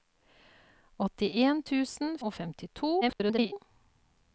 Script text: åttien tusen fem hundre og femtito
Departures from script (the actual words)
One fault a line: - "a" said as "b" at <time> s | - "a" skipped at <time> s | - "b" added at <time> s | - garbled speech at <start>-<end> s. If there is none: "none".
- "fem hundre" skipped at 2.2 s
- garbled speech at 3.0-3.5 s